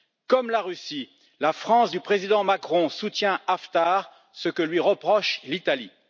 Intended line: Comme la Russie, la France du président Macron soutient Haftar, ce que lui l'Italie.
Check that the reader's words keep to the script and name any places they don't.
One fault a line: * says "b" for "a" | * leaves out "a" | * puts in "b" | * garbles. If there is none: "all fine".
* puts in "reproche"